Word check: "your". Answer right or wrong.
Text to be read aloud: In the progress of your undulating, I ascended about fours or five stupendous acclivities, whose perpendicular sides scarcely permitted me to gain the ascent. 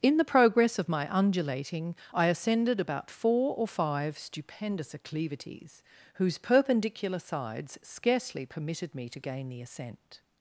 wrong